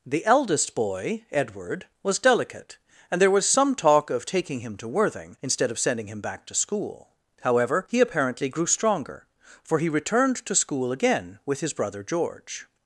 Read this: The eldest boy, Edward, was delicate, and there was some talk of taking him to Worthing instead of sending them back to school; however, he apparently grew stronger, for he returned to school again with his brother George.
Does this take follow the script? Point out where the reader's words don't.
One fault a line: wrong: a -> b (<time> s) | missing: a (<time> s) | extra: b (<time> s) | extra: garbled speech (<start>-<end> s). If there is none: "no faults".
wrong: them -> him (6.1 s)